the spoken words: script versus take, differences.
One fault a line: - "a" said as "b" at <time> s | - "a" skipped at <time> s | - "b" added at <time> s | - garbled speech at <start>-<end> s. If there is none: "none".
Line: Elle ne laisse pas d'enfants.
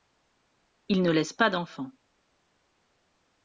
- "Elle" said as "Il" at 0.9 s